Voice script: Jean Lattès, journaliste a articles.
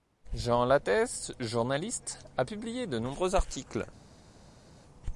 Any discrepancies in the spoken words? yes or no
yes